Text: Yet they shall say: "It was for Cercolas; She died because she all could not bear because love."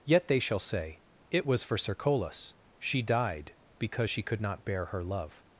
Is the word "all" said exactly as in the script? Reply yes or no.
no